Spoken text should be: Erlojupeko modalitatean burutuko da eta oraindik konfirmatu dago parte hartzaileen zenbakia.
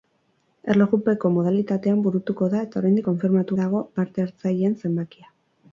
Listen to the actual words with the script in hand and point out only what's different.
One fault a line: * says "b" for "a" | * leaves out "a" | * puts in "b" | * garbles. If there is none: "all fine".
all fine